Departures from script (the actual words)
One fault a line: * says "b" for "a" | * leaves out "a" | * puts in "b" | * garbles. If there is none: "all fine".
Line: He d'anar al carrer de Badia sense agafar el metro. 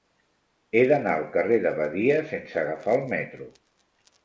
all fine